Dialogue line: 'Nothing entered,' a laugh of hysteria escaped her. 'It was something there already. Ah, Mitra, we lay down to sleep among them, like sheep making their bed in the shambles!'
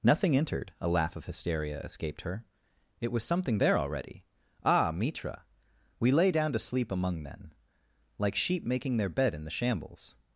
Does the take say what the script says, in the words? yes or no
no